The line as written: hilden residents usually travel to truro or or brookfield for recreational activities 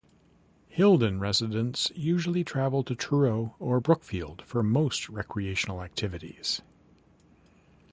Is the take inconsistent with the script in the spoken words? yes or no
yes